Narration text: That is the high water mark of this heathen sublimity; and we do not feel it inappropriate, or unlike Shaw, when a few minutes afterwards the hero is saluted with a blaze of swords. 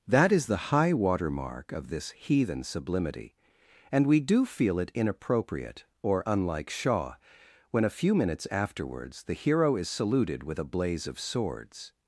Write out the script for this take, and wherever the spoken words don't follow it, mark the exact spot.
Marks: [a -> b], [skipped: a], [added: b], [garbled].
That is the high water mark of this heathen sublimity; and we do [skipped: not] feel it inappropriate, or unlike Shaw, when a few minutes afterwards the hero is saluted with a blaze of swords.